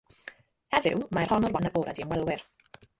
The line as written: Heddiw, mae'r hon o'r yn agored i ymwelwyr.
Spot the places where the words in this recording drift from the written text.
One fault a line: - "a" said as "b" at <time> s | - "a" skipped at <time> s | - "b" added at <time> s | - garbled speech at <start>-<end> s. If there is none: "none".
none